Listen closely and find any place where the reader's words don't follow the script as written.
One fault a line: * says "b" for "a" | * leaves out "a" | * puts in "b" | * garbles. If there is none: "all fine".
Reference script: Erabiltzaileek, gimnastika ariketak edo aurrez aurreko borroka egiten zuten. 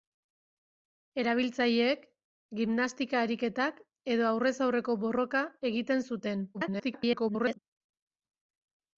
* garbles